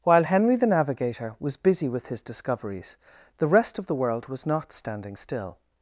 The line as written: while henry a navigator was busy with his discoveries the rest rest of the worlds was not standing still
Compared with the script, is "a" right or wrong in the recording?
wrong